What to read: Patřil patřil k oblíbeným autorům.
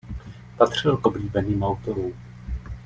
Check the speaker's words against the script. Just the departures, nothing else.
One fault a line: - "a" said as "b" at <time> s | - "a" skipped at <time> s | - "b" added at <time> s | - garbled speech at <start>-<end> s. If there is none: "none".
- "patřil" skipped at 1.0 s